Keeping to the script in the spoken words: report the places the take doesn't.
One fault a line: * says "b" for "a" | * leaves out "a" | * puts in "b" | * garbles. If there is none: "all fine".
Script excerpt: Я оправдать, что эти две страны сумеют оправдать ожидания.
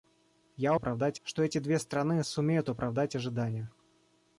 all fine